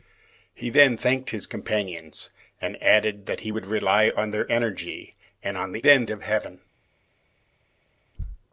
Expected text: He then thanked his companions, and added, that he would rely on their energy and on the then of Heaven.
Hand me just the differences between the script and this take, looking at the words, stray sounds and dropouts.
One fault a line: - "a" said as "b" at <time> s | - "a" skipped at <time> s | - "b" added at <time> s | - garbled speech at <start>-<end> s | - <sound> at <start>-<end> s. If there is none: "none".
none